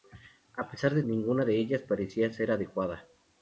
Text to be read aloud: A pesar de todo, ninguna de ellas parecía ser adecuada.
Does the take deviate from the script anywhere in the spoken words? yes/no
yes